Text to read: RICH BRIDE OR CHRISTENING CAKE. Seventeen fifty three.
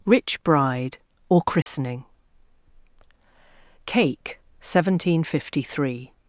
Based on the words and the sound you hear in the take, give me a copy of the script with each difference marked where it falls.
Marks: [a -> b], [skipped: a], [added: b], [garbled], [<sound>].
RICH BRIDE OR CHRISTENING [dropout] CAKE. Seventeen fifty three.